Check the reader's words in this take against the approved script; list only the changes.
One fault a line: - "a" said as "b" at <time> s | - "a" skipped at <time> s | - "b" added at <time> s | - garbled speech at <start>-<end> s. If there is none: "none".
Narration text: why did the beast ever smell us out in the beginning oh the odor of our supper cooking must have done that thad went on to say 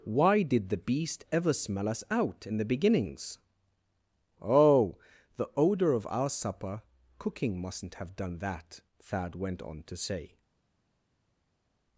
- "beginning" said as "beginnings" at 2.6 s
- "must" said as "mustn't" at 7.6 s